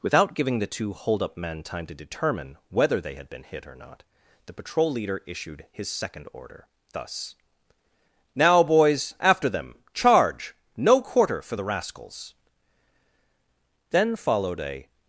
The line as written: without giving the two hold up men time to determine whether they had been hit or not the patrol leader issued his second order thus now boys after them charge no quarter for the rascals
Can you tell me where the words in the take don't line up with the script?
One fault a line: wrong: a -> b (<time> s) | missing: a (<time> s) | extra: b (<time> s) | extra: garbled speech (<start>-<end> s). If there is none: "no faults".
extra: then followed a (13.9 s)